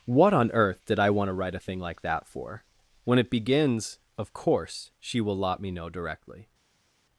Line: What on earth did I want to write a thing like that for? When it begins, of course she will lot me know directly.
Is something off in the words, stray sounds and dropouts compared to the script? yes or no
no